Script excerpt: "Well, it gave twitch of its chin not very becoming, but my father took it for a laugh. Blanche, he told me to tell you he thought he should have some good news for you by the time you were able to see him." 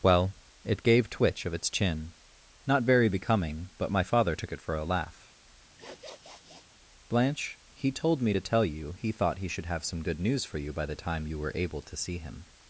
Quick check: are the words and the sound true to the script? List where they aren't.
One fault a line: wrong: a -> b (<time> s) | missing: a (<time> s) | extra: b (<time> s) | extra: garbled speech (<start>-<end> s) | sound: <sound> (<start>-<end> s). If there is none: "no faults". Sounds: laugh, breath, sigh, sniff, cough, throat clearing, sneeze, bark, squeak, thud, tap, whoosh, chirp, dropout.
sound: sniff (5.8-6.7 s)